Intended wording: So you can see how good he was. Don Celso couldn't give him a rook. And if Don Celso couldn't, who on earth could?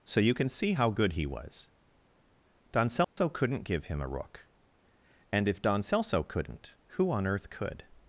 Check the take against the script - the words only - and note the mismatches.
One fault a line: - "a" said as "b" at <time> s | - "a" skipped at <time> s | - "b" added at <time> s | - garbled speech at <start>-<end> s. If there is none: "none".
none